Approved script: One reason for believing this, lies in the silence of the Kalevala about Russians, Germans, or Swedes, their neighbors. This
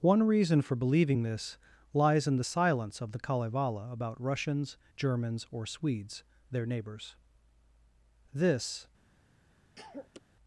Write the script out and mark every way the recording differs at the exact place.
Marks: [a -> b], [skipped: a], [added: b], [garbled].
One reason for believing this, lies in the silence of the Kalevala about Russians, Germans, or Swedes, their neighbors. This